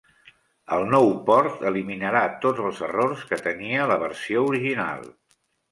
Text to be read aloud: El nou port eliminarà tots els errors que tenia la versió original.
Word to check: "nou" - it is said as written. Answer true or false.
true